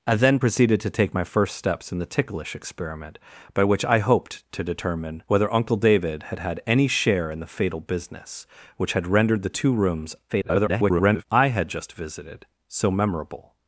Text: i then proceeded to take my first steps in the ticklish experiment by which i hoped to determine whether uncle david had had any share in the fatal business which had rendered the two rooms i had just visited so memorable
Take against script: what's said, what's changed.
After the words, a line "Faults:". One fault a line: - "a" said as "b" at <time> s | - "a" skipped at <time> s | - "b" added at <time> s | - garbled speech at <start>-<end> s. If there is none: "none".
i then proceeded to take my first steps in the ticklish experiment by which i hoped to determine whether uncle david had had any share in the fatal business which had rendered the two rooms [garbled] i had just visited so memorable
Faults:
- garbled speech at 10.3-11.3 s